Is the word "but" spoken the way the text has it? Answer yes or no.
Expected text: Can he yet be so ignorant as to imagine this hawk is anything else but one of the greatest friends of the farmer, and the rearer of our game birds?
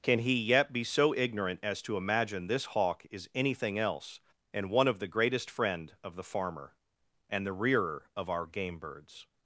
no